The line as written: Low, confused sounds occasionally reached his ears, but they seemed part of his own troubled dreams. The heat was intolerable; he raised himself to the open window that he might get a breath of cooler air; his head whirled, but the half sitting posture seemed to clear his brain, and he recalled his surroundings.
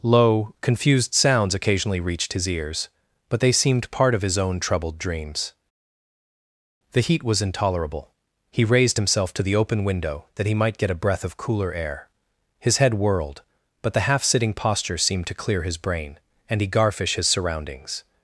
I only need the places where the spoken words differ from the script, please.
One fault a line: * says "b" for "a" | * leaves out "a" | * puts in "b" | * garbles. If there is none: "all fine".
* says "garfish" for "recalled"